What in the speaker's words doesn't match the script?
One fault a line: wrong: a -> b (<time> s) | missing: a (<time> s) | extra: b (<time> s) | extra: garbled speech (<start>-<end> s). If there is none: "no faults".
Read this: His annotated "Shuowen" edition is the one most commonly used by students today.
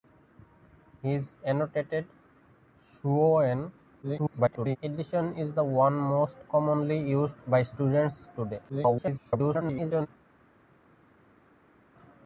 extra: garbled speech (4.0-4.8 s)
extra: garbled speech (8.7-10.1 s)